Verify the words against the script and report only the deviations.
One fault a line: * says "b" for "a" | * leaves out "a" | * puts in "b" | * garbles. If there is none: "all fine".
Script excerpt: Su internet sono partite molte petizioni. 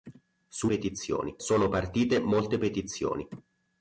* says "petizioni" for "internet"